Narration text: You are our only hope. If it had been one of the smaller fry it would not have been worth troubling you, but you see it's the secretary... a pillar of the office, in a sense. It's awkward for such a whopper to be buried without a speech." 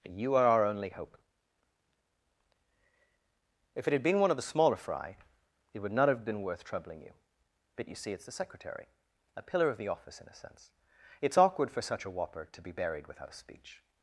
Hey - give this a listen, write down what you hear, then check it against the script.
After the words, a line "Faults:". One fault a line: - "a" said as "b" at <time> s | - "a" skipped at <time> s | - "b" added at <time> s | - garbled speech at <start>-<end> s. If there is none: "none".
You are our only hope. If it had been one of the smaller fry it would not have been worth troubling you, but you see it's the secretary... a pillar of the office, in a sense. It's awkward for such a whopper to be buried without speech."
Faults:
- "a" skipped at 13.3 s